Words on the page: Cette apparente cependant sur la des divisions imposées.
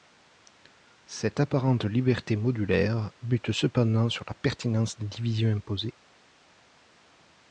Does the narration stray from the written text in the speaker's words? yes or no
yes